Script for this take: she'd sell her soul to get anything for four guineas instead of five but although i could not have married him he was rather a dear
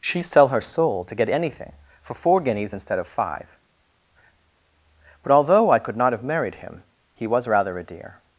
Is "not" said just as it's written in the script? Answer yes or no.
yes